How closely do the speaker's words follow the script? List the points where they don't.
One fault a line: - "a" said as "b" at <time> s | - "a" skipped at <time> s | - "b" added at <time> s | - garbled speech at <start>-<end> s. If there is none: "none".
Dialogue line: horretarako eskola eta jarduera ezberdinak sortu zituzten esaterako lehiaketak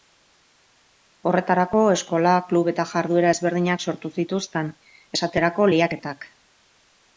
- "klub" added at 2.5 s